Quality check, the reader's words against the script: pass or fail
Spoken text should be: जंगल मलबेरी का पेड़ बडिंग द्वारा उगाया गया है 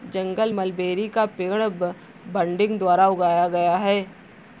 pass